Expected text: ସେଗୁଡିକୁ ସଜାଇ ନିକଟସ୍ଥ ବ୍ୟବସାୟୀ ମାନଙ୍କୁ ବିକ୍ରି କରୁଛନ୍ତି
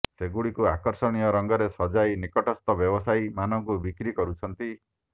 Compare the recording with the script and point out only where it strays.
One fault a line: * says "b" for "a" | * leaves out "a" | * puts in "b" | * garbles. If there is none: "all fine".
* puts in "ଆକର୍ଷଣୀୟ ରଙ୍ଗରେ"